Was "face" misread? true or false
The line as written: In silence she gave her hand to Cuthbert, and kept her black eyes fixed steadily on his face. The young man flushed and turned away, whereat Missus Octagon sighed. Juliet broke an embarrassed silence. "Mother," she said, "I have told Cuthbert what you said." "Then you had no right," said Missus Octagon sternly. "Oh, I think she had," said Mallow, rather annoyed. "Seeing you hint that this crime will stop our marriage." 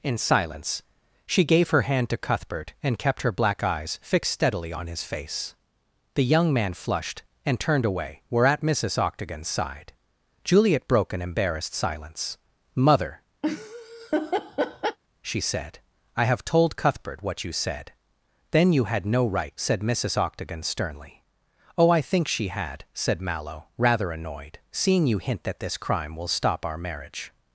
false